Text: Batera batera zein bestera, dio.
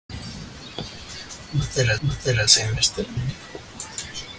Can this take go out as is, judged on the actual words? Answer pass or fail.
pass